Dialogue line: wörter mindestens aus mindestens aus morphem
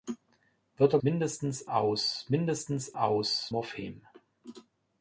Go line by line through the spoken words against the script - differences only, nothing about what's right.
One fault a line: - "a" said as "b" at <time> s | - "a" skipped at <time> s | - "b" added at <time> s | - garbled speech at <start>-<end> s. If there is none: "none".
none